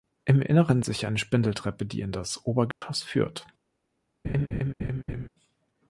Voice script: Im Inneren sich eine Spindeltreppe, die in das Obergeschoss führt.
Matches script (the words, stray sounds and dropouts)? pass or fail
fail